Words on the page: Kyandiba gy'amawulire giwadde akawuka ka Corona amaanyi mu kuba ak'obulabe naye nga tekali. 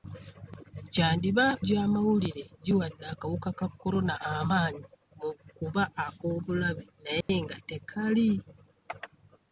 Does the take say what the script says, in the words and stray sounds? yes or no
no